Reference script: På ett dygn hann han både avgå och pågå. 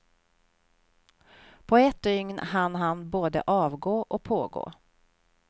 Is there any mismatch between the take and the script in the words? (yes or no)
no